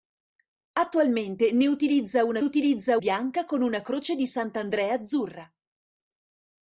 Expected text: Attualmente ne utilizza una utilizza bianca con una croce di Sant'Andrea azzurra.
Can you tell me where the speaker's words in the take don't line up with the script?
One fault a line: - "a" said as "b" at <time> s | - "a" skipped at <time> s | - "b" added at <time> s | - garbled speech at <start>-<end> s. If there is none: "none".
none